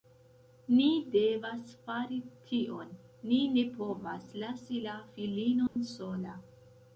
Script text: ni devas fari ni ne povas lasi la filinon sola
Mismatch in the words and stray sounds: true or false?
true